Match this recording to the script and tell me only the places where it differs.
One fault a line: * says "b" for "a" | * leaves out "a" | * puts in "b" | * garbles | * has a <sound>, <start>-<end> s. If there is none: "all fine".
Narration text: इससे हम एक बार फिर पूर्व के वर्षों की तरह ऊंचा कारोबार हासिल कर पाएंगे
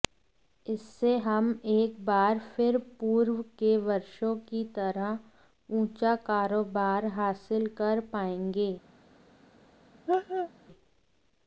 * has a laugh, 10.1-10.5 s